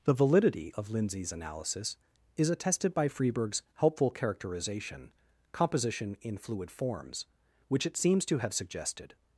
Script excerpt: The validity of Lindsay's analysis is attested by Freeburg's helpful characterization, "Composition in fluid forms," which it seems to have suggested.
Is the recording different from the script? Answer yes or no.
no